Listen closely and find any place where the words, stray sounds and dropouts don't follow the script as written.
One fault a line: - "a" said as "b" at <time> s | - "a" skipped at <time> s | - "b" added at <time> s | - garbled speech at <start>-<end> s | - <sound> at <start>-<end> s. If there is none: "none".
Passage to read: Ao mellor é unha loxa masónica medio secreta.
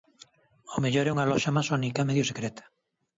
none